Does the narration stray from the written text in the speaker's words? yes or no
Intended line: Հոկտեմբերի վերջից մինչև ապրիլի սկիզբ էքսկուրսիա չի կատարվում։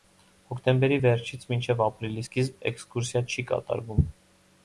no